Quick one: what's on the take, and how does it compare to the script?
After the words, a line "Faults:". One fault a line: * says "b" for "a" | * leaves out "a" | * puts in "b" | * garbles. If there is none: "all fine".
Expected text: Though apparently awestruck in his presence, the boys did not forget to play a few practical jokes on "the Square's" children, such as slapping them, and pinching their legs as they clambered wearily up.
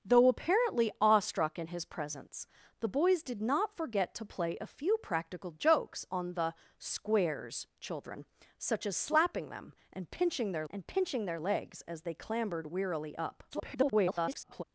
Though apparently awestruck in his presence, the boys did not forget to play a few practical jokes on "the Square's" children, such as slapping them, and pinching their and pinching their legs as they clambered wearily up. [garbled]
Faults:
* puts in "and pinching their"
* garbles